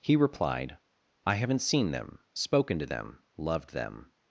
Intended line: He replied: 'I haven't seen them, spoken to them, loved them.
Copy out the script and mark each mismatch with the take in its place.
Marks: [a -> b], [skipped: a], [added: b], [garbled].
He replied: 'I haven't seen them, spoken to them, loved them.